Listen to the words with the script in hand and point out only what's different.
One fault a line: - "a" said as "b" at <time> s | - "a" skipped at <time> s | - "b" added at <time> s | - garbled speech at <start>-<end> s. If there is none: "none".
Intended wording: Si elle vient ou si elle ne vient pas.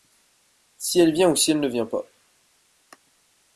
none